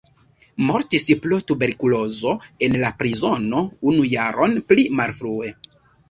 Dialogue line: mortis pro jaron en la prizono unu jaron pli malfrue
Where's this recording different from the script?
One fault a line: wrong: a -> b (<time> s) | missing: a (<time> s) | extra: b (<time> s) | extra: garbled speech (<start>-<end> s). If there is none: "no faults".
wrong: jaron -> tuberkulozo (1.5 s)